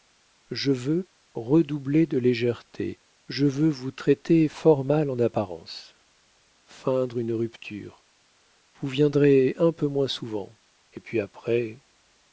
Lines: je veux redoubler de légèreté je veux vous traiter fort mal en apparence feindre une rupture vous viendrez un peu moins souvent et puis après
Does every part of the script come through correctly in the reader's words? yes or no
yes